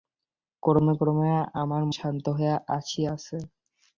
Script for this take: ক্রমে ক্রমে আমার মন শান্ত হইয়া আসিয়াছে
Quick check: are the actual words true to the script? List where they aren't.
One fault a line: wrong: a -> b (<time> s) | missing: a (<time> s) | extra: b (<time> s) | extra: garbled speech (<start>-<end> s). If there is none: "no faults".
missing: মন (1.8 s)